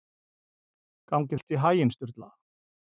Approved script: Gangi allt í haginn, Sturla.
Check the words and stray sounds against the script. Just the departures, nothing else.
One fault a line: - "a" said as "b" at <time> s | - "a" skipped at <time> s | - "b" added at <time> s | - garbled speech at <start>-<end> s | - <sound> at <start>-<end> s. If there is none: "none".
none